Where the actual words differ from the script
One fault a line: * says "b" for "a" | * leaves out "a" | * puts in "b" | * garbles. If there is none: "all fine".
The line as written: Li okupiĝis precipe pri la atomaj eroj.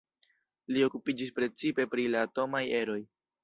all fine